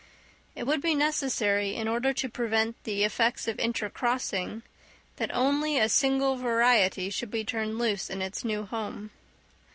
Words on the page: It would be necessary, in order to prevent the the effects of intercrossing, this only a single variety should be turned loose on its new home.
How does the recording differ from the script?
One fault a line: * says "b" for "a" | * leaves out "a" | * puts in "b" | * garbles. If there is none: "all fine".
* leaves out "the"
* says "that" for "this"
* says "in" for "on"